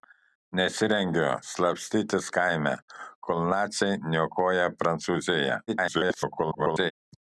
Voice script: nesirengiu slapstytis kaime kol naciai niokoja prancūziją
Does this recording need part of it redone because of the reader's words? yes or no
yes